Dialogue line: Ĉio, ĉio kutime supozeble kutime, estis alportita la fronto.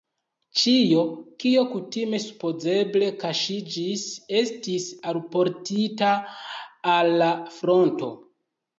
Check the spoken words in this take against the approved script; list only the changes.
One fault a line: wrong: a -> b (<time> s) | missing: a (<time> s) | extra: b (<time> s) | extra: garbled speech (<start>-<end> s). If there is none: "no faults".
wrong: ĉio -> kio (1.4 s)
wrong: kutime -> kaŝiĝis (3.2 s)
extra: al (7.0 s)